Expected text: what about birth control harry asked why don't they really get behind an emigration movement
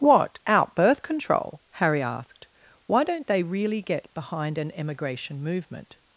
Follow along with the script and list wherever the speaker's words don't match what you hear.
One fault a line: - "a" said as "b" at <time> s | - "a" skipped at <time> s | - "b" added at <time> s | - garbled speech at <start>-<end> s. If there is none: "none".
- "about" said as "out" at 0.5 s